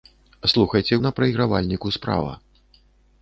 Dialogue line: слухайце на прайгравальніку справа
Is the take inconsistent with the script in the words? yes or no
no